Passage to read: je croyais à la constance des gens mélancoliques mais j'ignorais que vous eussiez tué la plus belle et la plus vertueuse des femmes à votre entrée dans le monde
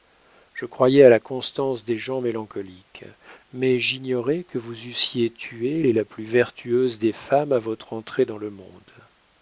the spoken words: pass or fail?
fail